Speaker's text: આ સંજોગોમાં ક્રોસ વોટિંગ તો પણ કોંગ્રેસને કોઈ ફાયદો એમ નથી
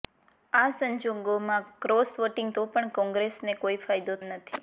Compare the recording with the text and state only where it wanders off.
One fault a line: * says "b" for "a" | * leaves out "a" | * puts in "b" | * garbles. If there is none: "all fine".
all fine